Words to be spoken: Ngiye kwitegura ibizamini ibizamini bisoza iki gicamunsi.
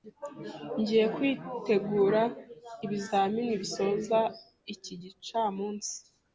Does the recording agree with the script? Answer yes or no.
no